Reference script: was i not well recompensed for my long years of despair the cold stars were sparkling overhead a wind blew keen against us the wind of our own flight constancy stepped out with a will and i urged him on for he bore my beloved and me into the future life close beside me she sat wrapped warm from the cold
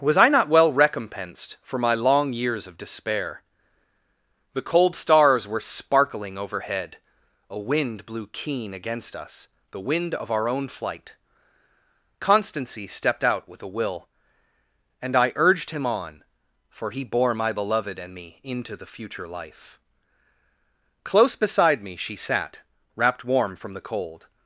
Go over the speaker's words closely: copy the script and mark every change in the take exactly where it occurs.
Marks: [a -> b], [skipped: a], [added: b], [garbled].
was i not well recompensed for my long years of despair the cold stars were sparkling overhead a wind blew keen against us the wind of our own flight constancy stepped out with a will and i urged him on for he bore my beloved and me into the future life close beside me she sat wrapped warm from the cold